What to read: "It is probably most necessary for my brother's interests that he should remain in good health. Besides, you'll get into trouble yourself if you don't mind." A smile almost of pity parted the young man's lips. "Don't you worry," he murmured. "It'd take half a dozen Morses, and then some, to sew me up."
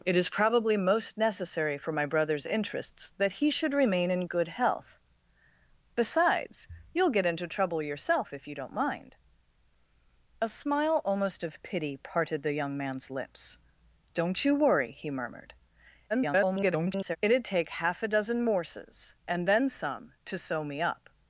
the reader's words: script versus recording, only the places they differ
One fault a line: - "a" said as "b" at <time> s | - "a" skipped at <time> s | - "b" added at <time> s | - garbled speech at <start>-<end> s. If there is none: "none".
- garbled speech at 16.1-17.2 s